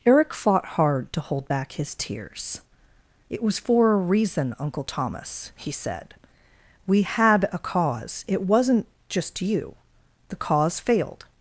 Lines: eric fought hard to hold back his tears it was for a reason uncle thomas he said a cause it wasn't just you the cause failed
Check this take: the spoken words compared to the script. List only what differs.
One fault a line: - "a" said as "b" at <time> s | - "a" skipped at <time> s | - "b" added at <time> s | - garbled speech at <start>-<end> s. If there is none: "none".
- "we had" added at 6.9 s